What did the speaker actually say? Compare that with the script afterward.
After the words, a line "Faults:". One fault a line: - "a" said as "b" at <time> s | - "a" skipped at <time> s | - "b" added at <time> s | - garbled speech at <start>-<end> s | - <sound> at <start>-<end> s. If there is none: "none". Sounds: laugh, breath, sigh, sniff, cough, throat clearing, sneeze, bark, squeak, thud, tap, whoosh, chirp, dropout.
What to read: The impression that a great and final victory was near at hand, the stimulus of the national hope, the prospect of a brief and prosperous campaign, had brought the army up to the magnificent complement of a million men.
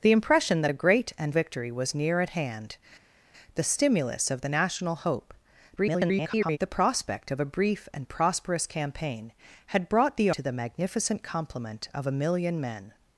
The impression that a great and victory was near at hand, the stimulus of the national hope, [garbled] the prospect of a brief and prosperous campaign, had brought the to the magnificent complement of a million men.
Faults:
- "final" skipped at 1.3 s
- garbled speech at 5.8-6.6 s
- "army up" skipped at 10.3 s